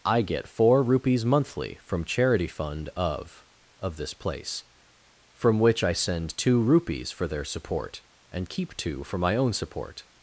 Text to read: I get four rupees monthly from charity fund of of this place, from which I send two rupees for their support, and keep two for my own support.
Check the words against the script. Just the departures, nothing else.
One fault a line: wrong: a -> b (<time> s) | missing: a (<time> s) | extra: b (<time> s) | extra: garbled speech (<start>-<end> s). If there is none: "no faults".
no faults